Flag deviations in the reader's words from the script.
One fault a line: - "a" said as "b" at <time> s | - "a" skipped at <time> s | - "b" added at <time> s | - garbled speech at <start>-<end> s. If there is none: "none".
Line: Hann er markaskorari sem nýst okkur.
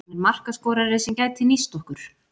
- "gæti" added at 1.2 s